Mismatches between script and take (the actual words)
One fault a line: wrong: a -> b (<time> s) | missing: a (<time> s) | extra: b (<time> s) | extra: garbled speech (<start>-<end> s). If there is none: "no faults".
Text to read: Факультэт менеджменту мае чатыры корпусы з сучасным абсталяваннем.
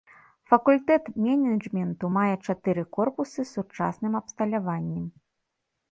no faults